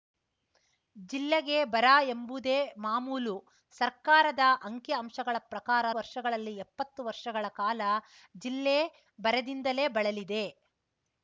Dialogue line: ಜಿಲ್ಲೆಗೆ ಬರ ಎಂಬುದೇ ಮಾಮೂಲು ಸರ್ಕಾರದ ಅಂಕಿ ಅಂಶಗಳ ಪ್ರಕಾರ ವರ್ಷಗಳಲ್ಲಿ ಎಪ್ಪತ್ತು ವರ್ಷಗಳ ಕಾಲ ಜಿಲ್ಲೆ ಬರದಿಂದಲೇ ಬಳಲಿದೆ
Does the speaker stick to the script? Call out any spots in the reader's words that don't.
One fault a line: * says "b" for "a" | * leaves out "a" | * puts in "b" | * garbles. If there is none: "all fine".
all fine